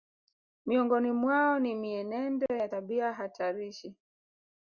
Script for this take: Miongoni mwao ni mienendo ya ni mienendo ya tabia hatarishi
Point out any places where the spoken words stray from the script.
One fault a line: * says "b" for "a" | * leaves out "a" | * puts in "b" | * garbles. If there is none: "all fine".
* leaves out "ni mienendo ya"